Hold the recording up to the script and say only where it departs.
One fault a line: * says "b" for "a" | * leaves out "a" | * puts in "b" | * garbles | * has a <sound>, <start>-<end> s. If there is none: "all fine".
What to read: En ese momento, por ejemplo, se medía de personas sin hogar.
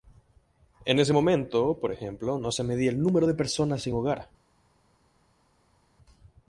* puts in "no"
* puts in "el número"